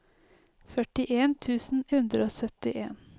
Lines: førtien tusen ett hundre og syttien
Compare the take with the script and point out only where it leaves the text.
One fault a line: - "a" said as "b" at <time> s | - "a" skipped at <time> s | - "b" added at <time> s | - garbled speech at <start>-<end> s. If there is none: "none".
- "ett" skipped at 1.8 s